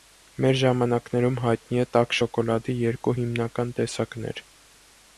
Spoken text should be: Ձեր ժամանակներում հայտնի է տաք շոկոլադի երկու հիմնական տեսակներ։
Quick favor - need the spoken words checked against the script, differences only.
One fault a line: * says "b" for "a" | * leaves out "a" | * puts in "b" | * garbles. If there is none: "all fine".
* says "Մեր" for "Ձեր"